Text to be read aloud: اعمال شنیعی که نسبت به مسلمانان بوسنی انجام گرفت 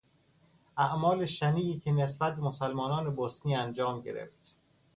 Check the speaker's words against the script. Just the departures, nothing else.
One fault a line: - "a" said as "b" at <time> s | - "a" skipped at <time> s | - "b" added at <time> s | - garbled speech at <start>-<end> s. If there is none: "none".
none